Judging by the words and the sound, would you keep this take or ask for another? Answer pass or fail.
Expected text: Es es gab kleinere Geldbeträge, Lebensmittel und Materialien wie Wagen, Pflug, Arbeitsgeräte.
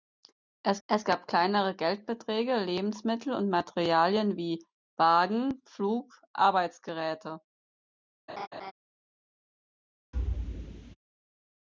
fail